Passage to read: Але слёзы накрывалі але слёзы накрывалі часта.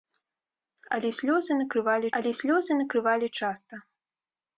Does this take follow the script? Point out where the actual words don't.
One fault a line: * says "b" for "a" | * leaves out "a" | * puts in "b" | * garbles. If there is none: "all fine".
all fine